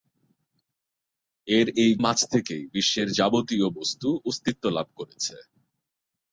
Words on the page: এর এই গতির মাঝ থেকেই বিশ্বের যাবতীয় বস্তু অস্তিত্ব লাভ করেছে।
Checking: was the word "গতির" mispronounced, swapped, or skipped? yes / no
yes